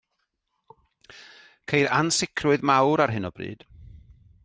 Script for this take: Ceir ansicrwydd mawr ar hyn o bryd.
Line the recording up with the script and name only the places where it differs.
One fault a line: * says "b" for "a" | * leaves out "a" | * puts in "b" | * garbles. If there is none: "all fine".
all fine